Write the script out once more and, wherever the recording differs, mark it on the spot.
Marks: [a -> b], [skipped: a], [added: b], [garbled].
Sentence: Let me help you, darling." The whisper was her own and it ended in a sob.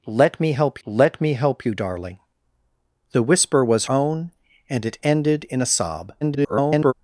Let me help [added: let me help] you, darling." The whisper was [skipped: her] own and it ended in a sob. [garbled]